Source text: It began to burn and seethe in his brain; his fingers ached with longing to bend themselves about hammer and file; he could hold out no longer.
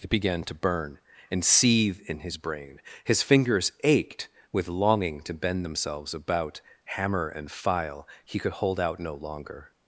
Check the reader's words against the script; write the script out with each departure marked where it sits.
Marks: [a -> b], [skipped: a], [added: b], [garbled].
It began to burn and seethe in his brain; his fingers ached with longing to bend themselves about hammer and file; he could hold out no longer.